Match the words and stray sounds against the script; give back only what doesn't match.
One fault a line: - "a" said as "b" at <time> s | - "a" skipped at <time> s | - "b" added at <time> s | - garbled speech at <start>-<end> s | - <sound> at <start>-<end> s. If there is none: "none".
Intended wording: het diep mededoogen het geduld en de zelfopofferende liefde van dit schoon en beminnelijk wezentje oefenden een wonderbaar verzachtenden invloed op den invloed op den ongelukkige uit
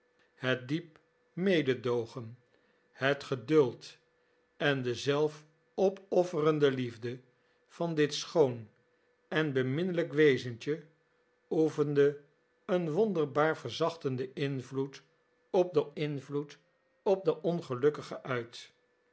none